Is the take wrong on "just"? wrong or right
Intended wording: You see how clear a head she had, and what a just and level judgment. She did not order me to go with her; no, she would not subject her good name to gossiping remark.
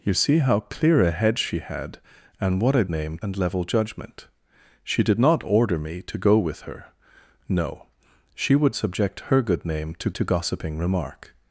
wrong